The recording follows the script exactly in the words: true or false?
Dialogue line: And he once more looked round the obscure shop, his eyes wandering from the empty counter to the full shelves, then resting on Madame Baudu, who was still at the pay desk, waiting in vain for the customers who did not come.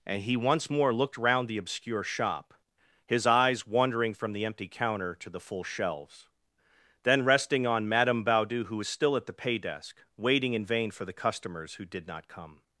true